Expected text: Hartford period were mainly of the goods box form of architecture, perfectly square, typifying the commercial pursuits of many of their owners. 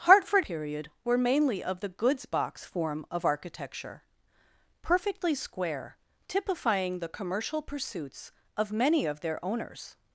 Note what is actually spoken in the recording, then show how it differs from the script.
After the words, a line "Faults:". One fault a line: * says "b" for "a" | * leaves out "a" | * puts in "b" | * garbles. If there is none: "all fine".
Hartford period were mainly of the goods box form of architecture, perfectly square, typifying the commercial pursuits of many of their owners.
Faults:
all fine